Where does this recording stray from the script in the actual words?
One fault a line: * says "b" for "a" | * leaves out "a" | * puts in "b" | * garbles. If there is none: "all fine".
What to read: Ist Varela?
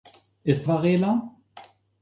all fine